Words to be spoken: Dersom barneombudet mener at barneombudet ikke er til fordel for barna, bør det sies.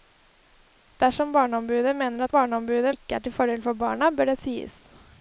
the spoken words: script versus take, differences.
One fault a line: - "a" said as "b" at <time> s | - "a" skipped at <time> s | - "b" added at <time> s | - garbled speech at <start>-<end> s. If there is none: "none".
none